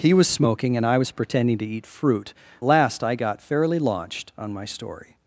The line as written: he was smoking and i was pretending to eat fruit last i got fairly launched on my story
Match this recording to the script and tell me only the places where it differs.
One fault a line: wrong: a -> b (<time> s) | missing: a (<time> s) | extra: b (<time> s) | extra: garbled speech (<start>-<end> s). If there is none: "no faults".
no faults